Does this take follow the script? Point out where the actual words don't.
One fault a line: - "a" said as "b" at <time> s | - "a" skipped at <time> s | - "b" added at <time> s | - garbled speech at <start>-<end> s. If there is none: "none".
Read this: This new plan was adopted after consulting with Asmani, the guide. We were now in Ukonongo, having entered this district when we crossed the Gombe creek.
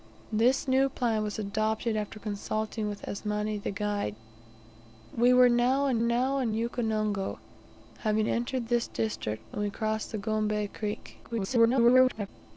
- "now in" added at 6.0 s
- garbled speech at 11.2-12.3 s